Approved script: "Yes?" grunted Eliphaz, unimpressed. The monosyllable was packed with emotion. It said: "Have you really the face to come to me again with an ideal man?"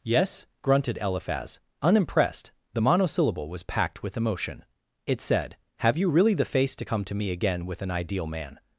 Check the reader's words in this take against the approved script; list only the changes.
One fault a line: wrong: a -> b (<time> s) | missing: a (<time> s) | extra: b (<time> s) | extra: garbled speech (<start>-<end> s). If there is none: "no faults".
no faults